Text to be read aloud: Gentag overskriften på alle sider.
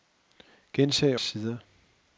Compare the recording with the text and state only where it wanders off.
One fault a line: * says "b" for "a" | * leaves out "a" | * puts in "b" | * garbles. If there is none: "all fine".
* leaves out "overskriften på alle"